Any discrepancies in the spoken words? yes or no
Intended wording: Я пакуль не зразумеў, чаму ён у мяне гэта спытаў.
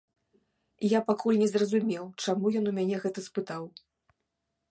no